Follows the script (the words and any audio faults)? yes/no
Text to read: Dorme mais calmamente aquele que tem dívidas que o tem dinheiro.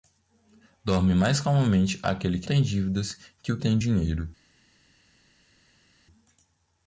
yes